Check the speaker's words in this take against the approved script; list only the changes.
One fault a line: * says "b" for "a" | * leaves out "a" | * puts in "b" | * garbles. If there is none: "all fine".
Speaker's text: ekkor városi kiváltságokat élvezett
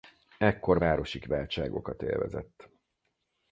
all fine